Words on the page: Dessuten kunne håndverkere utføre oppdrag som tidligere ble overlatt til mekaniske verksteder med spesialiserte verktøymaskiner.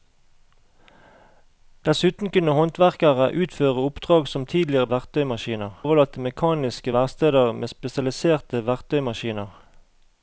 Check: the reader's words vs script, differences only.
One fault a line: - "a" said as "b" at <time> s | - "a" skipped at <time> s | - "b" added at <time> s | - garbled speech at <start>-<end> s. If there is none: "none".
- "ble" said as "verktøymaskiner" at 5.0 s